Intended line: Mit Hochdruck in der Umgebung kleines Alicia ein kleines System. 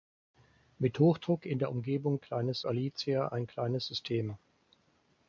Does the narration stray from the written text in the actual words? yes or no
no